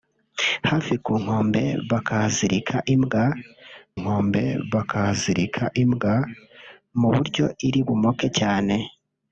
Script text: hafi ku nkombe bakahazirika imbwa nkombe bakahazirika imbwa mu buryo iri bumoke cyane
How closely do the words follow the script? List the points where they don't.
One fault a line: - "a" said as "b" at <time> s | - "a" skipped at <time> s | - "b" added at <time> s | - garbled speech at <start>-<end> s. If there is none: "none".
none